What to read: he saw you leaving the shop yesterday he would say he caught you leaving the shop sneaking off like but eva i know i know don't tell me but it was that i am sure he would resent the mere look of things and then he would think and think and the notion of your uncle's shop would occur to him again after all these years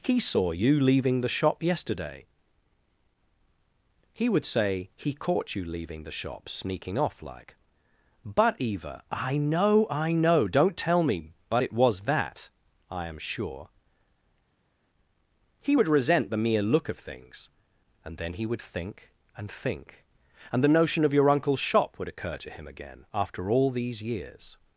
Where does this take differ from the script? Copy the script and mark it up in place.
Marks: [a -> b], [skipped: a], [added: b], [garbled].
he saw you leaving the shop yesterday he would say he caught you leaving the shop sneaking off like but eva i know i know don't tell me but it was that i am sure he would resent the mere look of things and then he would think and think and the notion of your uncle's shop would occur to him again after all these years